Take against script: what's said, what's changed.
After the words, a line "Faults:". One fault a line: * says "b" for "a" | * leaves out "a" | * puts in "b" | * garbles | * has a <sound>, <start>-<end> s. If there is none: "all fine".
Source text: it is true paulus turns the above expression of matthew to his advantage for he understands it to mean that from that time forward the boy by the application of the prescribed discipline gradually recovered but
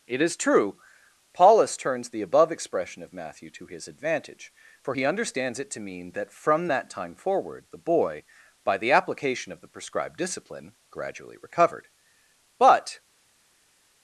it is true paulus turns the above expression of matthew to his advantage for he understands it to mean that from that time forward the boy by the application of the prescribed discipline gradually recovered but
Faults:
all fine